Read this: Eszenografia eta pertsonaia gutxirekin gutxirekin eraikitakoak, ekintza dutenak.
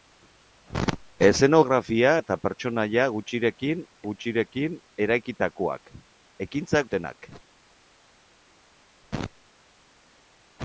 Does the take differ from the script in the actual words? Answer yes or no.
no